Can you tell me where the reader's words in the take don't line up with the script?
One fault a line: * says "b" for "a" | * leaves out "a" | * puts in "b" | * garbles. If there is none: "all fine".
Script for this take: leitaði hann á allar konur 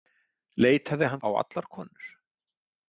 all fine